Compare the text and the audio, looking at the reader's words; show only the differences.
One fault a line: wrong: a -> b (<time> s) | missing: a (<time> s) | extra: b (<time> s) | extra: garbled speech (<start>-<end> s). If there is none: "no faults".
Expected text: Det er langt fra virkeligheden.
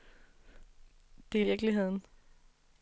missing: langt fra (1.4 s)